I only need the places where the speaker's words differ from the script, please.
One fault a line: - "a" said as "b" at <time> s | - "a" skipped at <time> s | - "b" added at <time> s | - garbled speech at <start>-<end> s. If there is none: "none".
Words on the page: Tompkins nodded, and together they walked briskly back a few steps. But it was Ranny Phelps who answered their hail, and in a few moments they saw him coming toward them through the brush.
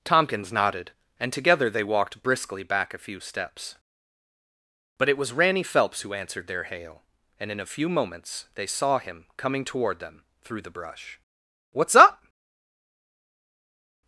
- "What's up" added at 11.7 s